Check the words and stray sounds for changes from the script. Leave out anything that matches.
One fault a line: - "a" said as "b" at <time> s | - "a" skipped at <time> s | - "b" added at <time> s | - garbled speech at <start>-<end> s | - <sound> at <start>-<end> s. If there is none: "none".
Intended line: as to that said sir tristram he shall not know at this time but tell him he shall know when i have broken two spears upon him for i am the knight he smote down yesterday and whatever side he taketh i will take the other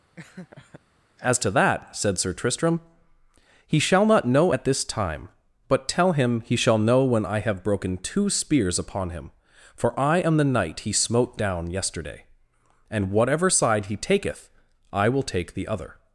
- laugh at 0.2-0.8 s